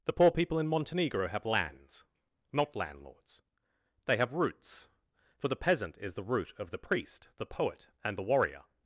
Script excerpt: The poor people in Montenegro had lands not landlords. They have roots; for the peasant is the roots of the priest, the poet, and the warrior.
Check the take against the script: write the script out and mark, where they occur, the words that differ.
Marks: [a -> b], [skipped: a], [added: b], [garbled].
The poor people in Montenegro [had -> have] lands not landlords. They have roots; for the peasant is the [roots -> root] of the priest, the poet, and the warrior.